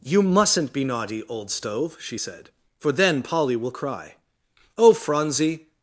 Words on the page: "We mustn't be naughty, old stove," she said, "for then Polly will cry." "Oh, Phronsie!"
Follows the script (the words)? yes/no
no